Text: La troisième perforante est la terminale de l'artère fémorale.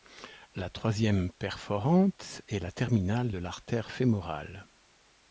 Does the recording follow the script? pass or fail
pass